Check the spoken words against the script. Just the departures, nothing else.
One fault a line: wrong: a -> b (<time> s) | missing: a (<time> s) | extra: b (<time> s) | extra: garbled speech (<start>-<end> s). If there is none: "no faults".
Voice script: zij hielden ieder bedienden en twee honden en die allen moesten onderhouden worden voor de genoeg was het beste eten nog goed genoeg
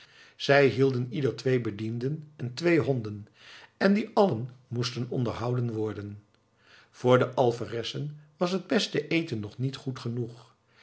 extra: twee (1.4 s)
wrong: genoeg -> alferessen (7.3 s)
extra: niet (9.6 s)